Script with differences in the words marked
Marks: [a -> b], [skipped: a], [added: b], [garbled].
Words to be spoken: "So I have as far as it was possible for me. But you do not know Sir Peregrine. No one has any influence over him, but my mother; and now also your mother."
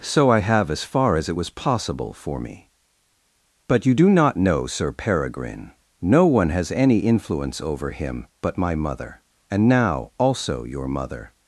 "So I have as far as it was possible for me. But you do not know Sir Peregrine. No one has any influence over him, but my mother; and now also your mother."